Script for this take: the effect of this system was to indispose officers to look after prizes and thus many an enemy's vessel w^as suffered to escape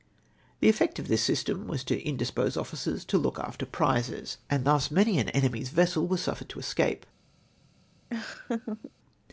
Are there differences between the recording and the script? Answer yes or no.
no